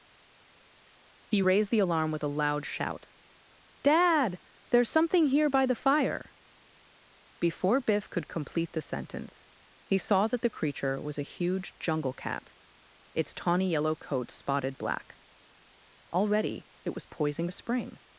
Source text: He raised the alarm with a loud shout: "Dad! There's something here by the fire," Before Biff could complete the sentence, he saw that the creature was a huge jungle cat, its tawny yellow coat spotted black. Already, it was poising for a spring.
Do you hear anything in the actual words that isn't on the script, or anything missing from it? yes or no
yes